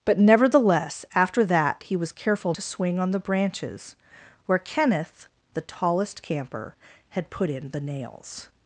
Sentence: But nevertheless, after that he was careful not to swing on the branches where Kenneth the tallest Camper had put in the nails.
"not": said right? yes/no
no